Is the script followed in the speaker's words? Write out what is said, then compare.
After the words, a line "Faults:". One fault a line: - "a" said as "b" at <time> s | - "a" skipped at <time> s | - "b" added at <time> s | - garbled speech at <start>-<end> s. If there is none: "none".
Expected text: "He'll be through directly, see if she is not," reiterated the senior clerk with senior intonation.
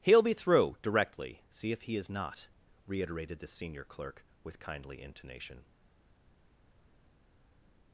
"He'll be through directly, see if he is not," reiterated the senior clerk with kindly intonation.
Faults:
- "she" said as "he" at 1.8 s
- "senior" said as "kindly" at 4.6 s